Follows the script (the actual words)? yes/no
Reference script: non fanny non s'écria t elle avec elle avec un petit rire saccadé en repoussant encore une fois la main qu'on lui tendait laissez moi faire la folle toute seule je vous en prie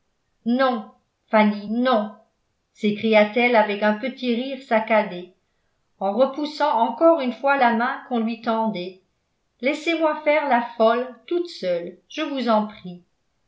no